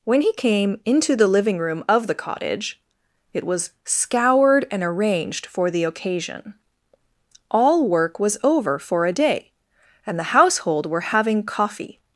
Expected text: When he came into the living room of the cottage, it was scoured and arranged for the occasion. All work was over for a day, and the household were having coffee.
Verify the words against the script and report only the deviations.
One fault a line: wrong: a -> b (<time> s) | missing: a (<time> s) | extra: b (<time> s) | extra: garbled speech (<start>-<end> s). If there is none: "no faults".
no faults